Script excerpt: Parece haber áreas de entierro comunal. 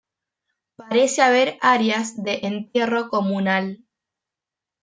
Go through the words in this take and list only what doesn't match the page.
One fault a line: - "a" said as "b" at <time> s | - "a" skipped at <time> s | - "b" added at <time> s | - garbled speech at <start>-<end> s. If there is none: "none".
none